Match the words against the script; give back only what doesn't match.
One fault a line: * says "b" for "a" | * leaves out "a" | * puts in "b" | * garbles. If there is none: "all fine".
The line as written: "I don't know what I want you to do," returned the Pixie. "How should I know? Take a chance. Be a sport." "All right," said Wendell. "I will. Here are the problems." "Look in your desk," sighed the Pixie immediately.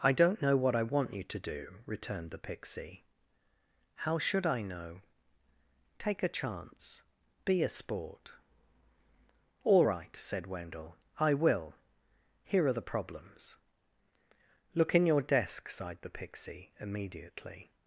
all fine